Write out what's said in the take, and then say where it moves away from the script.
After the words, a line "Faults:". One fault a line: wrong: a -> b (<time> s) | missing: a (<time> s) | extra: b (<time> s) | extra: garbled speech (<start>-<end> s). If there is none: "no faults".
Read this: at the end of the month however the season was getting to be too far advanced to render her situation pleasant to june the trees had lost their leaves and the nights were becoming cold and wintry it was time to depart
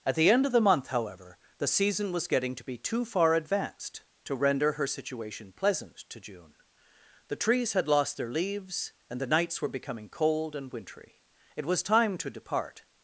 at the end of the month however the season was getting to be too far advanced to render her situation pleasant to june the trees had lost their leaves and the nights were becoming cold and wintry it was time to depart
Faults:
no faults